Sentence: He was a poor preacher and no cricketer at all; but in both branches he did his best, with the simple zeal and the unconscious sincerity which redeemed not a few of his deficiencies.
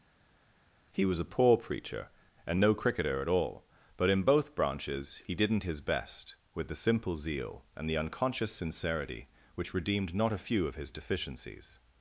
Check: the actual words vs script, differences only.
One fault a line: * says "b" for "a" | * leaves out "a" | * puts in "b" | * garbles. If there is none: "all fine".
* says "didn't" for "did"